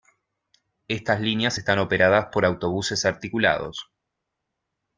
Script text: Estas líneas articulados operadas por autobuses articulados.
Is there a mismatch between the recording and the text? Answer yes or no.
yes